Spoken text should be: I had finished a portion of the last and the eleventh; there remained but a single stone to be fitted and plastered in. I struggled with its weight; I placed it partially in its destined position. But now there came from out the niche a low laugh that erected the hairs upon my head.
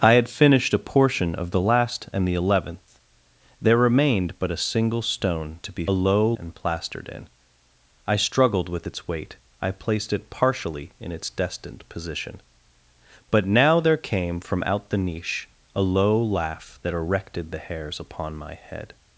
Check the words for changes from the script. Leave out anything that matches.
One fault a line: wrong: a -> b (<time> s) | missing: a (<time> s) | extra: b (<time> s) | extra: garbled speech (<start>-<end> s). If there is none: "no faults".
wrong: fitted -> low (5.9 s)